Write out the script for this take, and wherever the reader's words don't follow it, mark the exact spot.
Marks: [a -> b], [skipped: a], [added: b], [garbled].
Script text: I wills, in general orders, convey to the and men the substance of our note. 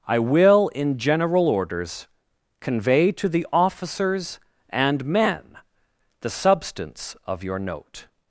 I [wills, -> will] in general orders, convey to the [added: officers] and men the substance of [our -> your] note.